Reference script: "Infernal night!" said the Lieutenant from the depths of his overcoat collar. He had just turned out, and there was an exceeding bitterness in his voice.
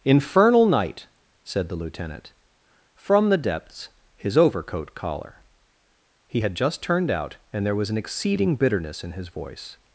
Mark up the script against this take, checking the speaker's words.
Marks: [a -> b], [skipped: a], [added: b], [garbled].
"Infernal night!" said the Lieutenant from the depths [skipped: of] his overcoat collar. He had just turned out, and there was an exceeding bitterness in his voice.